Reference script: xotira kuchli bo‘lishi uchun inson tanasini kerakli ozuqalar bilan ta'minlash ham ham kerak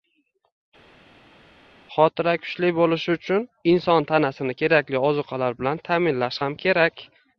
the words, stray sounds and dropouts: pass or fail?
fail